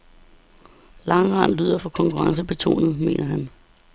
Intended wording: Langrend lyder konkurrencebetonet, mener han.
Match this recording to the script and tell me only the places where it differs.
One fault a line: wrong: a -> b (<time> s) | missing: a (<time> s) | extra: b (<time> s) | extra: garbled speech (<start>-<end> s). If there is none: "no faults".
extra: for (1.7 s)